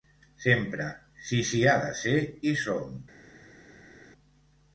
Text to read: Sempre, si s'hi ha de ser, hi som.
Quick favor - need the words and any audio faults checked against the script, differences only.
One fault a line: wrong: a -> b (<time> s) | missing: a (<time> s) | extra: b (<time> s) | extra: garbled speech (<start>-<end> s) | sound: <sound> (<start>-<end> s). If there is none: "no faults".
no faults